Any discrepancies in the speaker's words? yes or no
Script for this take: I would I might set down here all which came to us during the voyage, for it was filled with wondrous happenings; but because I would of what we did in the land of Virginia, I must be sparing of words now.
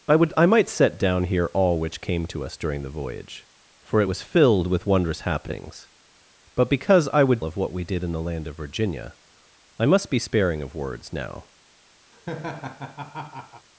no